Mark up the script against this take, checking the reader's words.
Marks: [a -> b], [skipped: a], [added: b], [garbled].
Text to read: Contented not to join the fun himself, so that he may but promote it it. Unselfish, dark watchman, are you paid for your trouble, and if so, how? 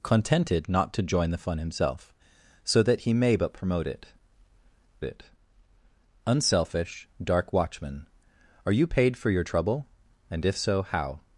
Contented not to join the fun himself, so that he may but promote it it. Unselfish, dark watchman, are you paid for your trouble, and if so, how?